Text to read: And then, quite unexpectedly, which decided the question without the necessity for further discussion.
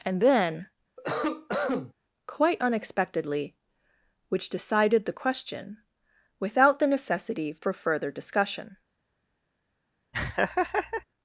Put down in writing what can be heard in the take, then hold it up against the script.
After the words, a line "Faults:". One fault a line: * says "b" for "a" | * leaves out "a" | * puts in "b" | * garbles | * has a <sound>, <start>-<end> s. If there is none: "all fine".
And then, quite unexpectedly, which decided the question without the necessity for further discussion.
Faults:
* has a cough, 1.0-1.9 s
* has a laugh, 10.1-11.0 s